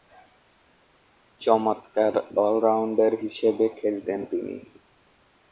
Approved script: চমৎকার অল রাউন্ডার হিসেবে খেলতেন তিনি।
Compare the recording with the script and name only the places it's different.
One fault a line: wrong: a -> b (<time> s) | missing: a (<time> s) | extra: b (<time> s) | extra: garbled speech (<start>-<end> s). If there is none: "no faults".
no faults